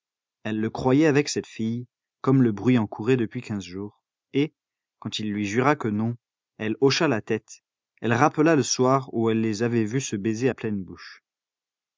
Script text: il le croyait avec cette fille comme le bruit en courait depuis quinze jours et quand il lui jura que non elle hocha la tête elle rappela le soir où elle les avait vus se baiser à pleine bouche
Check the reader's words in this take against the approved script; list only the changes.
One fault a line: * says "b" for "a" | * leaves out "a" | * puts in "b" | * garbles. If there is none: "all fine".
* says "elle" for "il"